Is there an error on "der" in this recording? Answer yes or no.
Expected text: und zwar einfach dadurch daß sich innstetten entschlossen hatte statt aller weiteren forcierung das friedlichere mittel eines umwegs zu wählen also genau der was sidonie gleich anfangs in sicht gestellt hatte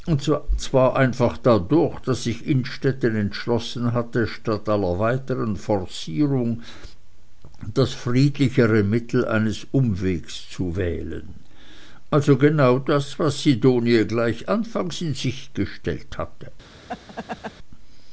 yes